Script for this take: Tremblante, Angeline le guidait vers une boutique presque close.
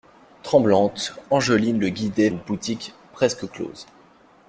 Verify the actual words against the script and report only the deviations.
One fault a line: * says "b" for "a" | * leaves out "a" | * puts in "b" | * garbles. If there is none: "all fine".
* leaves out "vers"